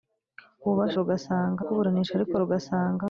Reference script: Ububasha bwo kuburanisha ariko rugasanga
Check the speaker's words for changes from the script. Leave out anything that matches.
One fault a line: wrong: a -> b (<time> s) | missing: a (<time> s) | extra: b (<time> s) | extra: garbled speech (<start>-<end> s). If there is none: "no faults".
wrong: bwo -> rugasanga (1.0 s)